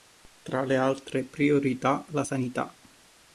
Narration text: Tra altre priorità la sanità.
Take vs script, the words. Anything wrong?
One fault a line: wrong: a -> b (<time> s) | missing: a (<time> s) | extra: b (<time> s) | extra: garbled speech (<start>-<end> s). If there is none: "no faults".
extra: le (0.6 s)